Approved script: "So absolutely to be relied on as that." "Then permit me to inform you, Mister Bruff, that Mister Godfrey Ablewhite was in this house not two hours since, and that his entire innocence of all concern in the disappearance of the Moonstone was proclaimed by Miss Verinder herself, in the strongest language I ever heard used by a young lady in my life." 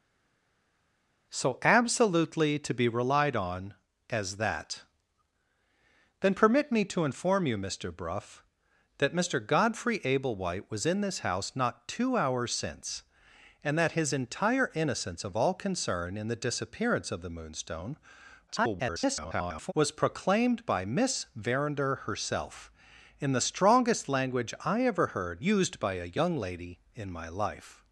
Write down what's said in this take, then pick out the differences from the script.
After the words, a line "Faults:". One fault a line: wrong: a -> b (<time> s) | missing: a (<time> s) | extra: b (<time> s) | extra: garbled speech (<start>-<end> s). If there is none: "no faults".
"So absolutely to be relied on as that." "Then permit me to inform you, Mister Bruff, that Mister Godfrey Ablewhite was in this house not two hours since, and that his entire innocence of all concern in the disappearance of the Moonstone [garbled] was proclaimed by Miss Verinder herself, in the strongest language I ever heard used by a young lady in my life."
Faults:
extra: garbled speech (18.5-19.7 s)